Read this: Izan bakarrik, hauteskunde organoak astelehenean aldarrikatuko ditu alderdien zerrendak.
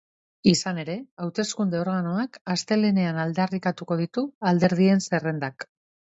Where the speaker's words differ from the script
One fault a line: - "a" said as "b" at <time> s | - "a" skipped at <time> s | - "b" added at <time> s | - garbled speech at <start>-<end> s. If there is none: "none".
- "bakarrik" said as "ere" at 0.8 s